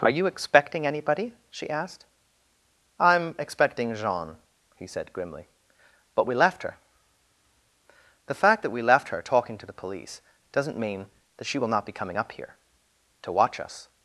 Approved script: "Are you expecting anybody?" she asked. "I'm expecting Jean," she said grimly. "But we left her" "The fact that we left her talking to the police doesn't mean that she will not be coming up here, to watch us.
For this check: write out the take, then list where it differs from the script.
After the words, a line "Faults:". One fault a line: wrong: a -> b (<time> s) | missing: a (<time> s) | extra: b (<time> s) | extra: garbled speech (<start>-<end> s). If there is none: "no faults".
"Are you expecting anybody?" she asked. "I'm expecting Jean," he said grimly. "But we left her" "The fact that we left her talking to the police doesn't mean that she will not be coming up here, to watch us.
Faults:
wrong: she -> he (4.8 s)